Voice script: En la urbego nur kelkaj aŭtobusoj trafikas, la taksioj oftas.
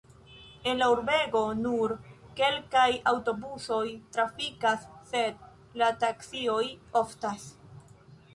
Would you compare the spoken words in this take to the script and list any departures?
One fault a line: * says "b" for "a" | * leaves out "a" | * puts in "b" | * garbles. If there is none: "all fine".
* puts in "sed"